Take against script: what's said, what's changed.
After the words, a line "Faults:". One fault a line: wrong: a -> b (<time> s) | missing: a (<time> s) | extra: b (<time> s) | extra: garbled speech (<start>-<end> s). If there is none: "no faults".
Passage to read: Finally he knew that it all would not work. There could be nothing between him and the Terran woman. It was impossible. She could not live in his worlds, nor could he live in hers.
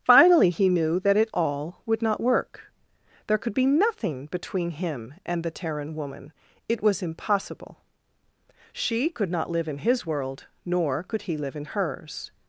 Finally he knew that it all would not work. There could be nothing between him and the Terran woman. It was impossible. She could not live in his world, nor could he live in hers.
Faults:
wrong: worlds -> world (10.1 s)